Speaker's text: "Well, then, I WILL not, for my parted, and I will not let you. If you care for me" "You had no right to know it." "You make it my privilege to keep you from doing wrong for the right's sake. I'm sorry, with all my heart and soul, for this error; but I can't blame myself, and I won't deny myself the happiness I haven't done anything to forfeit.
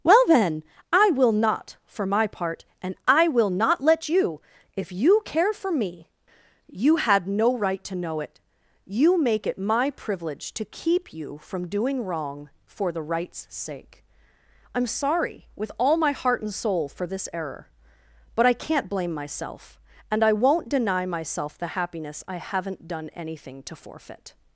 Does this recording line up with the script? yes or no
no